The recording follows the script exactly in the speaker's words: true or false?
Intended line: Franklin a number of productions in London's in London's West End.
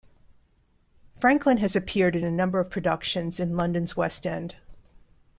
false